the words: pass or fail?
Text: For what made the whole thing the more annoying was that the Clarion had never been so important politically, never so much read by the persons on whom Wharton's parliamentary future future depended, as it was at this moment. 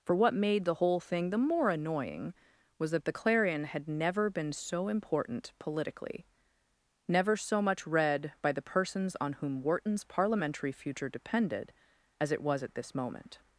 fail